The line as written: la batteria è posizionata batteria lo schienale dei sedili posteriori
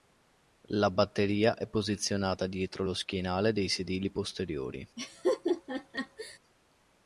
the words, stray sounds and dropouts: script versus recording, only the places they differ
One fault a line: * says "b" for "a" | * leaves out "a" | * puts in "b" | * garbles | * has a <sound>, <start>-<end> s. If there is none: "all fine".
* says "dietro" for "batteria"
* has a laugh, 5.0-6.4 s